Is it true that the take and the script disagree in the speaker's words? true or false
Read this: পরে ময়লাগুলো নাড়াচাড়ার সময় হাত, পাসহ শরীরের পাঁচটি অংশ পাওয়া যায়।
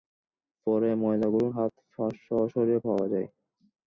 true